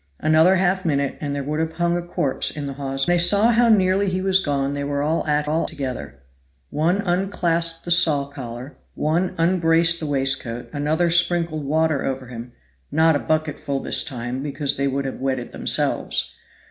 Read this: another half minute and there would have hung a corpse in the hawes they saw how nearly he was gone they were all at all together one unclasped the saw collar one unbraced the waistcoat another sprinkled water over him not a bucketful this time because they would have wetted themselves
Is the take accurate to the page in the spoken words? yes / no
yes